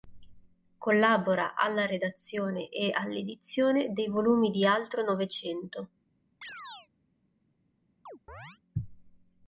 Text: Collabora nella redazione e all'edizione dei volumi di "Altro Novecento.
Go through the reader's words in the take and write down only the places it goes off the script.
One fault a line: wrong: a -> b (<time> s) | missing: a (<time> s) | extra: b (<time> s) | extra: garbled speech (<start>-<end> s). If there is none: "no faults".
wrong: nella -> alla (1.5 s)